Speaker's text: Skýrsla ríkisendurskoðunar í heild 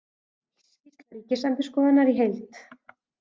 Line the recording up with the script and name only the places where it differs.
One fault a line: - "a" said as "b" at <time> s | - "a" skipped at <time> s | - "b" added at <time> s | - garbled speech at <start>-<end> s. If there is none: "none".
none